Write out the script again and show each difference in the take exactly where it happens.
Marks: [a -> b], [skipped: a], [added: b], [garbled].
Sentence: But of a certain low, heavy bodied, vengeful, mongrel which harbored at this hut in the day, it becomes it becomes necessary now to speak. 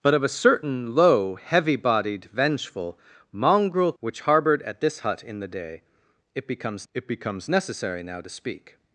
But of a certain low, heavy bodied, vengeful, mongrel which harbored at this hut in the day, it becomes it becomes necessary now to speak.